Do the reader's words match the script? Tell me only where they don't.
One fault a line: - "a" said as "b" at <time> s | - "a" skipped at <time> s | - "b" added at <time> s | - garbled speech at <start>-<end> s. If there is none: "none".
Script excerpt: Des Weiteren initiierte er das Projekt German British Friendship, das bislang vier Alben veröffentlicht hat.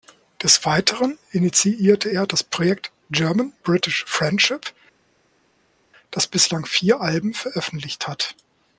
none